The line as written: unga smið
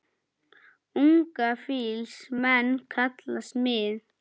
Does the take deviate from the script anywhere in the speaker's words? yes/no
yes